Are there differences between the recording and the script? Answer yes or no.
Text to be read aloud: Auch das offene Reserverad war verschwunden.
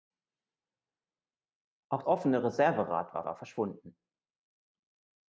yes